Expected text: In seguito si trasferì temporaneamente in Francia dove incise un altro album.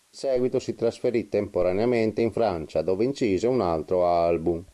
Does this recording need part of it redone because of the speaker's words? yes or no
no